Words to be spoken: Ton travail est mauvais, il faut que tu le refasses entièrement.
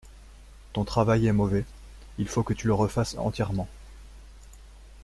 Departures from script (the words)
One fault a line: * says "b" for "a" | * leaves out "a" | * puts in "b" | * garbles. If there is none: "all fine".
all fine